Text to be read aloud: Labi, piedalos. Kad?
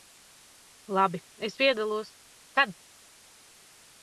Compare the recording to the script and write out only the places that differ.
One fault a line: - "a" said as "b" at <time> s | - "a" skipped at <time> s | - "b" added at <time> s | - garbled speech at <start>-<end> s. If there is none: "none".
- "es" added at 1.4 s